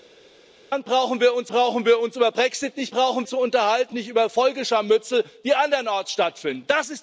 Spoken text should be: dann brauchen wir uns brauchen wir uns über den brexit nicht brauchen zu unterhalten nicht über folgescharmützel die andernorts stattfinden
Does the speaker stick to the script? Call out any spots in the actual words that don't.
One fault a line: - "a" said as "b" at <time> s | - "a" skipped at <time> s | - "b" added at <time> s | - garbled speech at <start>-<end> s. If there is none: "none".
none